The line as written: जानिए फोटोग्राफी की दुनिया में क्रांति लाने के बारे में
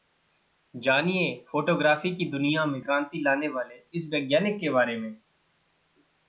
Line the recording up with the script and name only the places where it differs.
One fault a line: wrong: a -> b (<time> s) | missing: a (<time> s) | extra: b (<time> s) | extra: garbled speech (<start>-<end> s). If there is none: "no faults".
extra: वाले इस वैज्ञानिक (3.5 s)